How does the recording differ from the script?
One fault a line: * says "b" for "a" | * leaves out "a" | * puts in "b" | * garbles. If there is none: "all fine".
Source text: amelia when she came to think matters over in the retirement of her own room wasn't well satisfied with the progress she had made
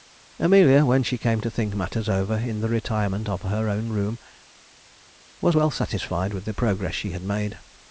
* says "was" for "wasn't"